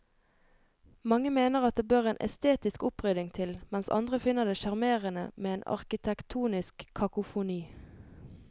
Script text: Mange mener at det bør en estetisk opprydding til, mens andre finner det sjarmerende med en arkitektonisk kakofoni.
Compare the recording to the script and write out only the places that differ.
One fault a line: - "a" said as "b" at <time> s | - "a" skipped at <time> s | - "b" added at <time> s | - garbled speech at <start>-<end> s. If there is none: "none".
none